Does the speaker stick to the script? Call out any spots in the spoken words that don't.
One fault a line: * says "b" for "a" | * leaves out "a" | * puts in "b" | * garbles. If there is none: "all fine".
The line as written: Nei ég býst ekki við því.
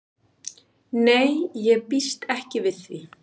all fine